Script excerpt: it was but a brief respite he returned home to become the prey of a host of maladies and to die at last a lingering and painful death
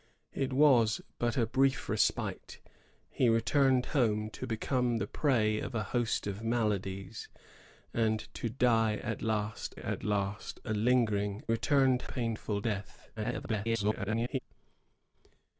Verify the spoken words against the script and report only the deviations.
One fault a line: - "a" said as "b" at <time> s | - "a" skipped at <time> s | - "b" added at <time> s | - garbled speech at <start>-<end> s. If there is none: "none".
- "at last" added at 9.7 s
- "and" said as "returned" at 11.5 s
- garbled speech at 13.2-14.4 s